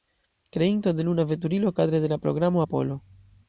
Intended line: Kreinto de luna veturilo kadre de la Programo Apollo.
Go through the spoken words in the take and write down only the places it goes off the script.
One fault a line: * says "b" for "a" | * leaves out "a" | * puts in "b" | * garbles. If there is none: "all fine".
all fine